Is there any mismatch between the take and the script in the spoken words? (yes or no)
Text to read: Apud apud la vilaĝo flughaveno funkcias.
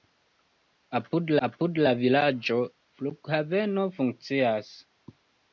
no